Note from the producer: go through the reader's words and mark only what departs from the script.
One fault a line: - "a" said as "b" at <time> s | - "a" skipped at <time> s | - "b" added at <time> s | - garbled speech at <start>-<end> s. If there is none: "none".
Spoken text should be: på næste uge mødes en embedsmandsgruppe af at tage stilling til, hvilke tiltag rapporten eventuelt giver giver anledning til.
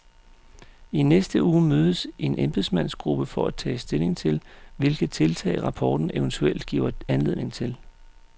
- "på" said as "I" at 0.9 s
- "af" said as "for" at 3.2 s
- "giver" skipped at 6.9 s